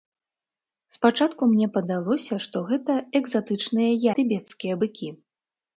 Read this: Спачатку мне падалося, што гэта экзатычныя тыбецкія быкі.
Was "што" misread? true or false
false